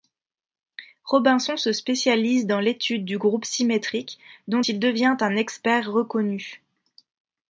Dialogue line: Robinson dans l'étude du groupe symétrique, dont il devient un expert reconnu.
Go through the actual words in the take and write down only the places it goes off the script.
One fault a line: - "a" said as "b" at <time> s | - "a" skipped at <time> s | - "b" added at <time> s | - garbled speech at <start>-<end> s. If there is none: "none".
- "se spécialise" added at 1.6 s